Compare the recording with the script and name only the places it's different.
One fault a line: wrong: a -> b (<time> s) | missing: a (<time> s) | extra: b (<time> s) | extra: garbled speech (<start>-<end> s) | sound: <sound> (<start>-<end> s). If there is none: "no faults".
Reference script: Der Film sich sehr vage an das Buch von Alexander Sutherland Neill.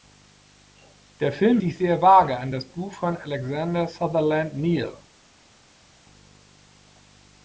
no faults